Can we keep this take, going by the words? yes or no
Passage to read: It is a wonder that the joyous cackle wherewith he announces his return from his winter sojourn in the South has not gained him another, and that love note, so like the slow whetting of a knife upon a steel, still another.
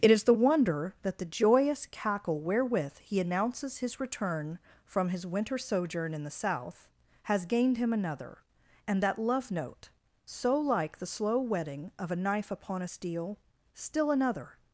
no